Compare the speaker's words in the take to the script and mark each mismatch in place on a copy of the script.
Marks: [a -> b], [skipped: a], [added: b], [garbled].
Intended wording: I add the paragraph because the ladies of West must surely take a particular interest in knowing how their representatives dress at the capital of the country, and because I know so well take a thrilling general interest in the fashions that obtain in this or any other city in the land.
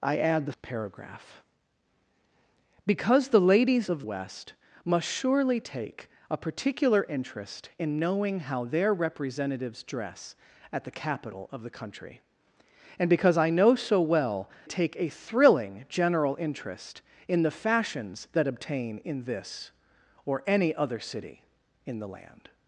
I add the paragraph because the ladies of West must surely take a particular interest in knowing how their representatives dress at the capital of the country, and because I know so well take a thrilling general interest in the fashions that obtain in this or any other city in the land.